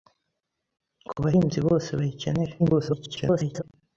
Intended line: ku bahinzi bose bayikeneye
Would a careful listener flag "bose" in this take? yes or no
no